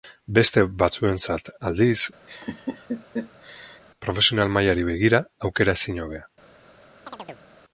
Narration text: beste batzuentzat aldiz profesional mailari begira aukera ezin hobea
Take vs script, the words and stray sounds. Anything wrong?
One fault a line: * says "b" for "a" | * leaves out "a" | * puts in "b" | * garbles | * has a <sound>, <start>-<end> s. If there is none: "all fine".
* has a laugh, 2.3-3.8 s
* has a chirp, 7.1-7.5 s